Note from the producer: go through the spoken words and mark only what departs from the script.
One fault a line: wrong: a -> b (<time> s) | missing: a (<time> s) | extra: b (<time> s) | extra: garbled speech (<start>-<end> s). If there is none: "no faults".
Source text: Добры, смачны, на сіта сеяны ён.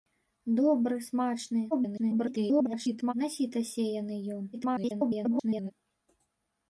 extra: garbled speech (1.7-3.1 s)
extra: garbled speech (4.5-5.7 s)